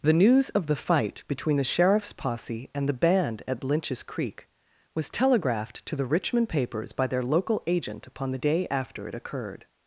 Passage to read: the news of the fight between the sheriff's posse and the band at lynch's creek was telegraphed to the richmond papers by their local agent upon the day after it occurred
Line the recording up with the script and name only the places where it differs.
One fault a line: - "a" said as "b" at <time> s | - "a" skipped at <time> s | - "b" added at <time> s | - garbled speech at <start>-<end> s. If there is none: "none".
none